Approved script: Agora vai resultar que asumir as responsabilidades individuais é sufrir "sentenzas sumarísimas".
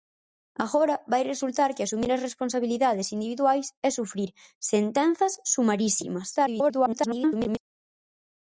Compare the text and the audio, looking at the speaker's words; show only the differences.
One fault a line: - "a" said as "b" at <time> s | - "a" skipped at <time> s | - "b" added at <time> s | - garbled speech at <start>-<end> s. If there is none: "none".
- garbled speech at 6.3-7.6 s